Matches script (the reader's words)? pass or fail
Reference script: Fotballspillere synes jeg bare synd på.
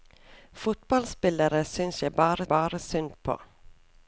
fail